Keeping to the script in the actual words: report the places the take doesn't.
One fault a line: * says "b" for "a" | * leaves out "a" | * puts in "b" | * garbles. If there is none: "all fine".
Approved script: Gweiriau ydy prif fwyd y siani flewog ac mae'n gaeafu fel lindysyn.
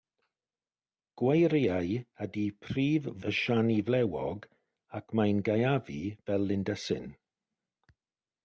* leaves out "fwyd"